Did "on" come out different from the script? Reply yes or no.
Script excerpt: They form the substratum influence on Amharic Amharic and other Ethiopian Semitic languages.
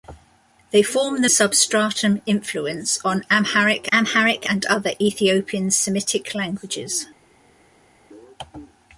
no